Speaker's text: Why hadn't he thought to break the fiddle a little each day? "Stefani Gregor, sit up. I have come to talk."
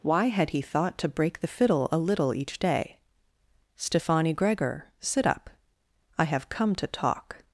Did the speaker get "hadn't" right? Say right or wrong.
wrong